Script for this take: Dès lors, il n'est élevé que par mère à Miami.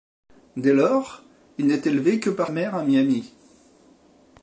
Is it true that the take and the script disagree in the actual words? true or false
false